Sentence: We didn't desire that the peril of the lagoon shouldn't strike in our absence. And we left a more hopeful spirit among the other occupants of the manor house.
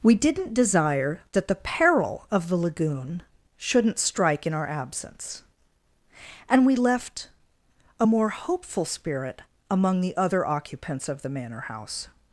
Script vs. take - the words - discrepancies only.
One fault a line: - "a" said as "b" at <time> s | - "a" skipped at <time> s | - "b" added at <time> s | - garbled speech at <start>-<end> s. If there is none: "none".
none